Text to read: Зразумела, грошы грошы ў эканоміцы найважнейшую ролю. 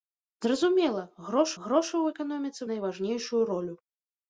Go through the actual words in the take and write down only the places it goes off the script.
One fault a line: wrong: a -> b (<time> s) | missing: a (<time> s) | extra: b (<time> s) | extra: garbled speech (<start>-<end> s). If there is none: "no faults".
no faults